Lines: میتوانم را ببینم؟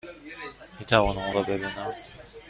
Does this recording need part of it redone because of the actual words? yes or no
no